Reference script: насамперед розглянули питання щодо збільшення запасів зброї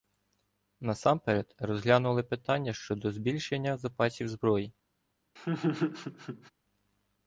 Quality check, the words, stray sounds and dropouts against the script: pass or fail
fail